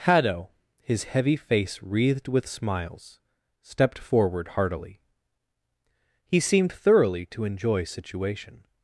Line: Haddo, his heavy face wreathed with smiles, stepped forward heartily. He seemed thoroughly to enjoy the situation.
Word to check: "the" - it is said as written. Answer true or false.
false